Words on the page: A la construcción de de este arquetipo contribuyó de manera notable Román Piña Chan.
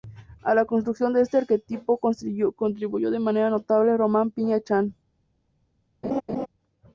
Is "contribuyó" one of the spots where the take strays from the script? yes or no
no